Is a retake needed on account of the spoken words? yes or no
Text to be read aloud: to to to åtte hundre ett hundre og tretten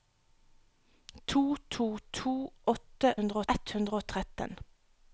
no